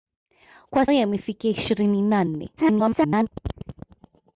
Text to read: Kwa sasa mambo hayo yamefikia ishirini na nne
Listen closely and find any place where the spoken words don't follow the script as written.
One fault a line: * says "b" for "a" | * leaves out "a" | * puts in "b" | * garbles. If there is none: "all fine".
* leaves out "sasa mambo hayo"
* garbles